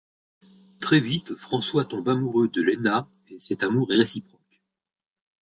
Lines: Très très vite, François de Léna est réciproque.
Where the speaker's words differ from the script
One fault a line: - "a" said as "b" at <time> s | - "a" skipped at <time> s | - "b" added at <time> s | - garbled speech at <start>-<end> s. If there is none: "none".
- "très" skipped at 1.0 s
- "tombe amoureux" added at 1.9 s
- "et cet amour" added at 3.3 s